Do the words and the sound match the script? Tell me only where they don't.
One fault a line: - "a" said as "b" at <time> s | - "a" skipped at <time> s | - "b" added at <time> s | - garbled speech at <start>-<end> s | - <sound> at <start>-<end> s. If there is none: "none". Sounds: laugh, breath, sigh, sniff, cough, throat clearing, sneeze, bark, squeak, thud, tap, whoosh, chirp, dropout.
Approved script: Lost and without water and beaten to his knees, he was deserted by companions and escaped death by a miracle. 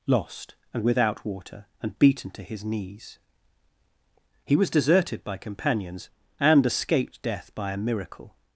none